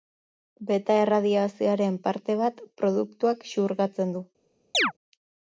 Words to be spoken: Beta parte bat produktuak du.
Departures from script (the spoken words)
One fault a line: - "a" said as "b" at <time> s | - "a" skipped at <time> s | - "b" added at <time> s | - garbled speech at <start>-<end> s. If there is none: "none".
- "erradiazioaren" added at 1.0 s
- "xurgatzen" added at 3.5 s